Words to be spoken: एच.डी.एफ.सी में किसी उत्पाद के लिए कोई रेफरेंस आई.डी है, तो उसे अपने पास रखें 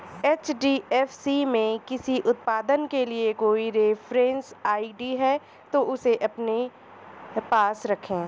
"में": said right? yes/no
yes